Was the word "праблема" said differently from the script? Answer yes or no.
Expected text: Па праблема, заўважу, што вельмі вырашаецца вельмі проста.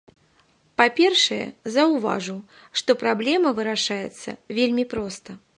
yes